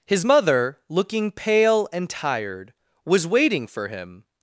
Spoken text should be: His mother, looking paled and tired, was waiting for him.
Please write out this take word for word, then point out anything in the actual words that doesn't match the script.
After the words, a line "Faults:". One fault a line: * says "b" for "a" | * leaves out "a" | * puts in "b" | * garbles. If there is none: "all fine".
His mother, looking pale and tired, was waiting for him.
Faults:
* says "pale" for "paled"